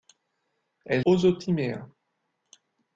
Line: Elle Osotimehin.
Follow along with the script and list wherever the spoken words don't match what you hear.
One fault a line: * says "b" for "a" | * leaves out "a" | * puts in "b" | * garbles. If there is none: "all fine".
all fine